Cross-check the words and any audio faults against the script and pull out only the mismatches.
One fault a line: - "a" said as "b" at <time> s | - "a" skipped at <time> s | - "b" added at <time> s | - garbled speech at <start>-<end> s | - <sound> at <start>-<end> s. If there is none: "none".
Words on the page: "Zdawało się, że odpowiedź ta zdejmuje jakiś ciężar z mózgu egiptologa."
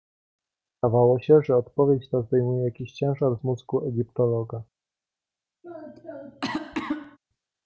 - cough at 5.6-7.2 s